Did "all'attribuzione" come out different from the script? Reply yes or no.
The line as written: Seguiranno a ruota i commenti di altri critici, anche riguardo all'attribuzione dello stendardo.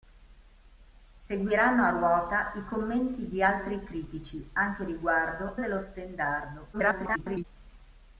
yes